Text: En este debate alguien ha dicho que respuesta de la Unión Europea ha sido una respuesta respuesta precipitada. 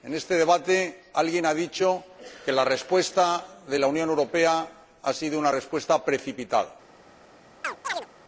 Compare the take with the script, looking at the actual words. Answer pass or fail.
fail